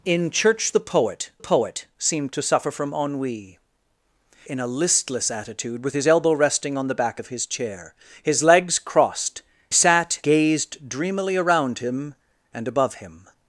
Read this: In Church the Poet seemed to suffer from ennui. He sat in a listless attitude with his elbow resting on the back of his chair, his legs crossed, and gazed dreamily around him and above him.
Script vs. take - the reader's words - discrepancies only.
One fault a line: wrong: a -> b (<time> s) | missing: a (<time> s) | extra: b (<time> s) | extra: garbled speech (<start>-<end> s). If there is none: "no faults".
extra: Poet (1.4 s)
missing: He sat (3.6 s)
wrong: and -> sat (9.7 s)